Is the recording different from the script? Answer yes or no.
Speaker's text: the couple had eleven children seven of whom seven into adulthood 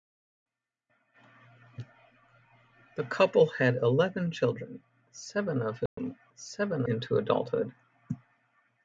no